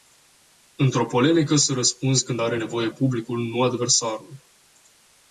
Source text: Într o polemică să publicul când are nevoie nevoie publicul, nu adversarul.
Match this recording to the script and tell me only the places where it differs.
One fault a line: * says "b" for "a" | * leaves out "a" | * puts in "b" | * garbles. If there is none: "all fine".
* says "răspunzi" for "publicul"
* leaves out "nevoie"